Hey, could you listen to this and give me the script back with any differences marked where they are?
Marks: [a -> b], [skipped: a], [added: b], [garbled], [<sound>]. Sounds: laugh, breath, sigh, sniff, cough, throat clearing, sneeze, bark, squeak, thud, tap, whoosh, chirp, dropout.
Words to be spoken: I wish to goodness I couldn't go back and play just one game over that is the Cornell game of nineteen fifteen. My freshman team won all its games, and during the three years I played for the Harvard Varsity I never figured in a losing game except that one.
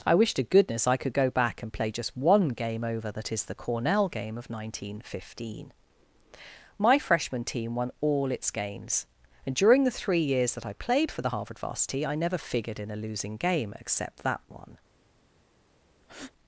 I wish to goodness I [couldn't -> could] go back and play just one game over that is the Cornell game of nineteen fifteen. My freshman team won all its games, and during the three years [added: that] I played for the Harvard Varsity I never figured in a losing game except that one. [breath]